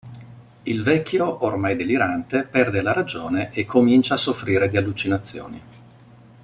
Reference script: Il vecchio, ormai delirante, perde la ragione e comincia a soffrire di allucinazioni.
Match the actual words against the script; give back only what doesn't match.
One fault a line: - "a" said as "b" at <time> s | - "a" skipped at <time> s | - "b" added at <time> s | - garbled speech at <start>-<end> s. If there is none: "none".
none